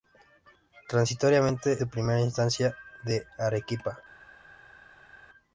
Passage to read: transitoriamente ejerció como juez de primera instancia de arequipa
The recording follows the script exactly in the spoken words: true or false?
false